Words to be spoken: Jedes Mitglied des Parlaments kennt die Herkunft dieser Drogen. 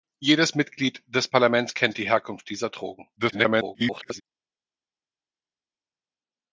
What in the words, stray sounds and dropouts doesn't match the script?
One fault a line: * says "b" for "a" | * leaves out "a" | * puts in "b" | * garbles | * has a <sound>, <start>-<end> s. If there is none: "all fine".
* garbles